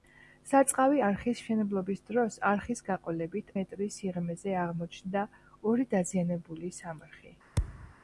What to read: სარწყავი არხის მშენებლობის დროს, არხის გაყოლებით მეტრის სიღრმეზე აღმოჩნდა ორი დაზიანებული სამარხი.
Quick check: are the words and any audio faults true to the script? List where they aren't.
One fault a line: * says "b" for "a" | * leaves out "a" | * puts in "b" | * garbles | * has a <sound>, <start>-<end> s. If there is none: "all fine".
* has a thud, 7.6-7.9 s